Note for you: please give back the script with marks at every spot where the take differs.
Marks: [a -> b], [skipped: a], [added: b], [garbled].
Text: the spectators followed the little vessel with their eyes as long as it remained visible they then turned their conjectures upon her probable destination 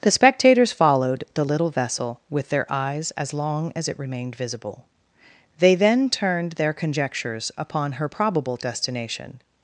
the spectators followed the little vessel with their eyes as long as it remained visible they then turned their conjectures upon her probable destination